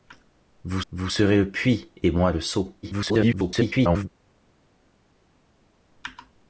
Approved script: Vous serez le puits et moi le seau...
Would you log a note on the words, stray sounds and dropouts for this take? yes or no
yes